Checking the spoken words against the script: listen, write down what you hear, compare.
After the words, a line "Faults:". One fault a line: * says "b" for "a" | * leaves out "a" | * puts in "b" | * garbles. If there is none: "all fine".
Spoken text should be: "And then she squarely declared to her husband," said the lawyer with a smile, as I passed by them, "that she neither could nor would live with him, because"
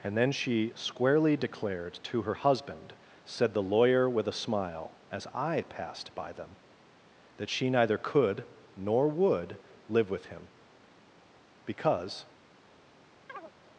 "And then she squarely declared to her husband," said the lawyer with a smile, as I passed by them, "that she neither could nor would live with him, because"
Faults:
all fine